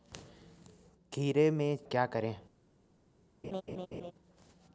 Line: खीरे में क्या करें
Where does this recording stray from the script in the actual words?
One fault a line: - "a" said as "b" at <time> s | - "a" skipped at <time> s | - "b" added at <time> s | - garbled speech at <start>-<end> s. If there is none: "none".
none